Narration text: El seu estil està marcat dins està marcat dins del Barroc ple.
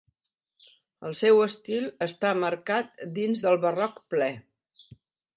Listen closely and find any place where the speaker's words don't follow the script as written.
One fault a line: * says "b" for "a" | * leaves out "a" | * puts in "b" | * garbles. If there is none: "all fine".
* leaves out "està marcat dins"